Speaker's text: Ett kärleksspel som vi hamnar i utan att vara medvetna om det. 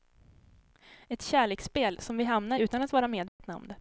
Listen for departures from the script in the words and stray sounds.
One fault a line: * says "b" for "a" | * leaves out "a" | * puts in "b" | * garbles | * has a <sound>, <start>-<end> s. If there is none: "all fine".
* leaves out "i"
* has a dropout, 3.3-3.4 s